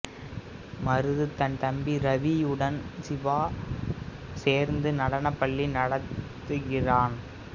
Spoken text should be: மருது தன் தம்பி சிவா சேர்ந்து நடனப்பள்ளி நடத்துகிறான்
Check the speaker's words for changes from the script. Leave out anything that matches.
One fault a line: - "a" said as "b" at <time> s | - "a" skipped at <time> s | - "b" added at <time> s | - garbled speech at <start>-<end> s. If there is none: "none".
- "ரவியுடன்" added at 2.0 s